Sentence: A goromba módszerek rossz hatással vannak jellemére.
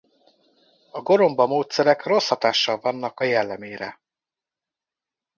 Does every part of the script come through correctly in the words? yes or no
yes